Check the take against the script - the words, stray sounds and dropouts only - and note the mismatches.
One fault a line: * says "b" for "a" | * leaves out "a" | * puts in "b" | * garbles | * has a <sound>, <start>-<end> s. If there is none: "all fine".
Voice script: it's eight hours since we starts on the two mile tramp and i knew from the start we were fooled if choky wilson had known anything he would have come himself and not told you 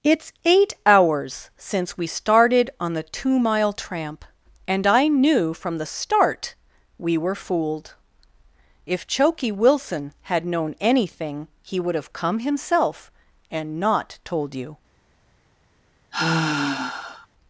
* says "started" for "starts"
* has a sigh, 16.1-17.3 s